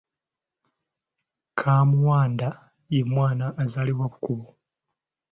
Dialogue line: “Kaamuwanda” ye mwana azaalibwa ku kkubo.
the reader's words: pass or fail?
pass